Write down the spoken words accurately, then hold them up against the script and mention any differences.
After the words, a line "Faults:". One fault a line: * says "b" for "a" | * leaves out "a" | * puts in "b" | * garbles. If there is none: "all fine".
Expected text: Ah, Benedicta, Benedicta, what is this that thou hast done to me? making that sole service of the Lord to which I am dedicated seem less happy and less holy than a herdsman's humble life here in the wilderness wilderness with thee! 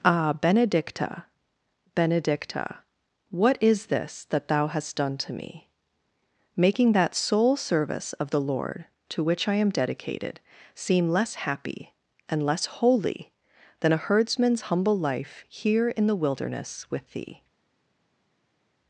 Ah, Benedicta, Benedicta, what is this that thou hast done to me? making that sole service of the Lord to which I am dedicated seem less happy and less holy than a herdsman's humble life here in the wilderness with thee!
Faults:
* leaves out "wilderness"